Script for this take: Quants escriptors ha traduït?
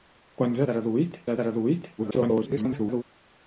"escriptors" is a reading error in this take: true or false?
true